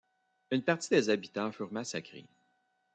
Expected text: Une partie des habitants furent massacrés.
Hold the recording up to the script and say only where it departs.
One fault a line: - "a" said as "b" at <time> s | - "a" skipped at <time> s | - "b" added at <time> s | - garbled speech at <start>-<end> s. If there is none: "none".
none